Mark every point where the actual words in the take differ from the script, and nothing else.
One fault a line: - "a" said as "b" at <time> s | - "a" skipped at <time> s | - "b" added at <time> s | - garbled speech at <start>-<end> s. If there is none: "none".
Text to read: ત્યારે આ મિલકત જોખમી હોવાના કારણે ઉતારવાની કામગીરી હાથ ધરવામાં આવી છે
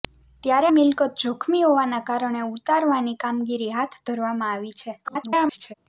- "આ" skipped at 0.7 s
- garbled speech at 5.0-5.7 s